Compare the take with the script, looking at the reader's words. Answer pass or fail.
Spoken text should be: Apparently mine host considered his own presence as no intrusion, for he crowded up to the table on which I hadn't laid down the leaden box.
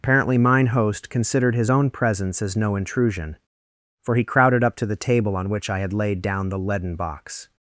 fail